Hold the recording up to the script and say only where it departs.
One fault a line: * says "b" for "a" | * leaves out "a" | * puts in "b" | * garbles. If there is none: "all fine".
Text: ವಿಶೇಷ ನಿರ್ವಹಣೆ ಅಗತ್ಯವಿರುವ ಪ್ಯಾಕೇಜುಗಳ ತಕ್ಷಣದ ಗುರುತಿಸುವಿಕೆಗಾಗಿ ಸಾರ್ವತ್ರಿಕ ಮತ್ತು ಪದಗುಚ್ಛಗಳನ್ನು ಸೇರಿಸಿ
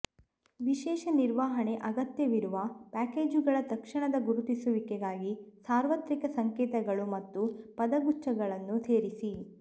* puts in "ಸಂಕೇತಗಳು"